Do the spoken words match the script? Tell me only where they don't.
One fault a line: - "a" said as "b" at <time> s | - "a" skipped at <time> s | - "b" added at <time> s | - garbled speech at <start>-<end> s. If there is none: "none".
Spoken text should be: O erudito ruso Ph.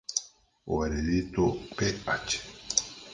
- "ruso" skipped at 1.4 s